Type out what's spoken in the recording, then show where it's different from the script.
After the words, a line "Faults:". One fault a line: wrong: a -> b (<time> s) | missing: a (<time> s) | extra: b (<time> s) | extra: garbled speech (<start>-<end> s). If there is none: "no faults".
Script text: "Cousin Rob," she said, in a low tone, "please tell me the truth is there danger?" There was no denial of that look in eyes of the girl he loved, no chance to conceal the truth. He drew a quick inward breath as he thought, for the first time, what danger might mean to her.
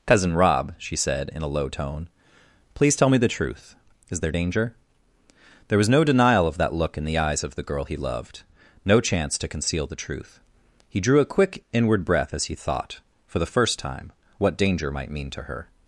"Cousin Rob," she said, in a low tone, "please tell me the truth is there danger?" There was no denial of that look in the eyes of the girl he loved, no chance to conceal the truth. He drew a quick inward breath as he thought, for the first time, what danger might mean to her.
Faults:
extra: the (7.0 s)